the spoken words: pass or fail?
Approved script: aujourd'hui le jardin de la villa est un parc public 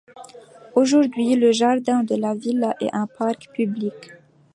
pass